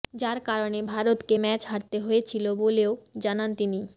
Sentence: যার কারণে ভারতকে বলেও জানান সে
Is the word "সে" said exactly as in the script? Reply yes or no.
no